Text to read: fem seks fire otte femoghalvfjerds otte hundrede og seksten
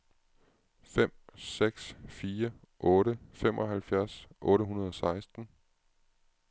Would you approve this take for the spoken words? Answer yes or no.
yes